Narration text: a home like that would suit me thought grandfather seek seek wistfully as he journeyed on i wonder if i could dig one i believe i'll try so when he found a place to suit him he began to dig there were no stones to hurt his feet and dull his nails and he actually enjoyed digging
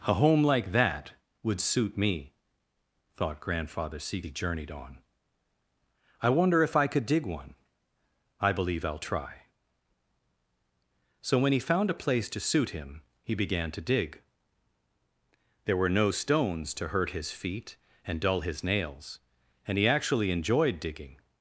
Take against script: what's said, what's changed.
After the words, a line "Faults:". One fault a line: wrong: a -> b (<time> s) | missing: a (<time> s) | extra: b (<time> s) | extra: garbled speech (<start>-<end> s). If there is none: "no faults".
a home like that would suit me thought grandfather seek he journeyed on i wonder if i could dig one i believe i'll try so when he found a place to suit him he began to dig there were no stones to hurt his feet and dull his nails and he actually enjoyed digging
Faults:
missing: seek wistfully as (4.2 s)